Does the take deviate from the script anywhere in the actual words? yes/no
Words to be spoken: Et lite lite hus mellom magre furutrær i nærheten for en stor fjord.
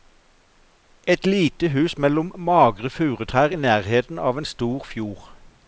yes